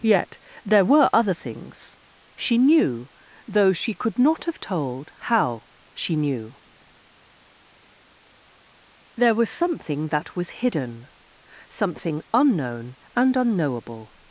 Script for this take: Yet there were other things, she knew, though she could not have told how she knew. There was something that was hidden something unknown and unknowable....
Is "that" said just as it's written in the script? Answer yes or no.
yes